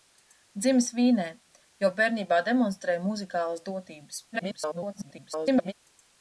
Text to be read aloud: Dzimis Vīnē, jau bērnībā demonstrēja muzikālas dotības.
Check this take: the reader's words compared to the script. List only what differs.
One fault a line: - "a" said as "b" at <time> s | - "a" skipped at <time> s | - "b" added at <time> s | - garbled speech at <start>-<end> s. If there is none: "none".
- garbled speech at 4.3-5.7 s